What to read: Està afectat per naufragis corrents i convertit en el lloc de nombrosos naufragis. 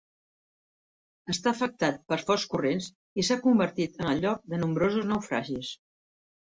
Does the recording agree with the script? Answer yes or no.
no